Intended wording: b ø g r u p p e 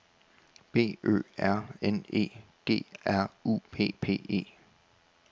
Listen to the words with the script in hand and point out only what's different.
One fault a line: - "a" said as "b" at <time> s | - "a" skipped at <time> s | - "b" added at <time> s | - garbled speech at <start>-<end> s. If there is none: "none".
- "r n e" added at 1.4 s